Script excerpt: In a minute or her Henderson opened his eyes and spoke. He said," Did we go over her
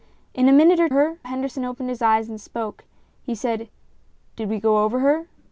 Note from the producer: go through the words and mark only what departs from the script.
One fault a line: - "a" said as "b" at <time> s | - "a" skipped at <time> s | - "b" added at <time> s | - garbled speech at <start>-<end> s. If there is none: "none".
none